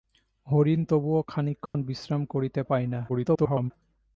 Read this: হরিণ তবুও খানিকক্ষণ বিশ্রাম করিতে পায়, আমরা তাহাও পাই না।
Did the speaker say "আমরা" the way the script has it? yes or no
no